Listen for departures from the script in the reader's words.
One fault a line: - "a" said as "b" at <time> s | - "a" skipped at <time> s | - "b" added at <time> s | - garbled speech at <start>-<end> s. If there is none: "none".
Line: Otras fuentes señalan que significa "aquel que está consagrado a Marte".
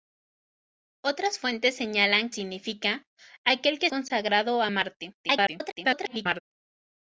- "que" skipped at 2.3 s
- "está" skipped at 3.9 s
- garbled speech at 5.2-6.4 s